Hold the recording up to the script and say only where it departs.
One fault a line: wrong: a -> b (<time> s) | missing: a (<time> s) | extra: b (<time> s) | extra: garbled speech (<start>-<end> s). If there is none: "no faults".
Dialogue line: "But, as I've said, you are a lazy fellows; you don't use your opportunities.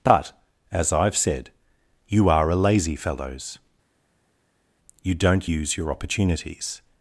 no faults